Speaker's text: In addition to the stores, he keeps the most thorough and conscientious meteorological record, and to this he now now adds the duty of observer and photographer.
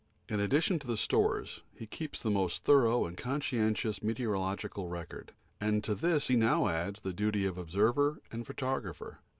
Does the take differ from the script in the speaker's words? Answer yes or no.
yes